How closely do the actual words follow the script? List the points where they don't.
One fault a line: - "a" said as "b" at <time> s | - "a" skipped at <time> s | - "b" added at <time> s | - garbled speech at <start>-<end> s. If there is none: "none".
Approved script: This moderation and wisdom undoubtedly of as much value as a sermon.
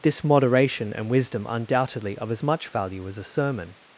none